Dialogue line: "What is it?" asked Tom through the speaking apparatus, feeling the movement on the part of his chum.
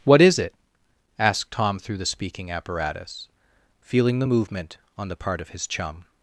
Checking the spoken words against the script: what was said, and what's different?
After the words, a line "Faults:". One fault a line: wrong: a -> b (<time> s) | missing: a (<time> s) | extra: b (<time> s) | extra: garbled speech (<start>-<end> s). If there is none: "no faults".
"What is it?" asked Tom through the speaking apparatus, feeling the movement on the part of his chum.
Faults:
no faults